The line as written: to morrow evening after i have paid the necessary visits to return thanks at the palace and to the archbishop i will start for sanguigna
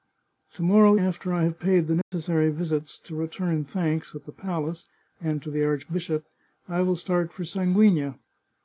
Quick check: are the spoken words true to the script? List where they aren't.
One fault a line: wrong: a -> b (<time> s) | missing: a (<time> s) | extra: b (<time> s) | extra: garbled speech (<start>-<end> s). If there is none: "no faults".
missing: evening (1.0 s)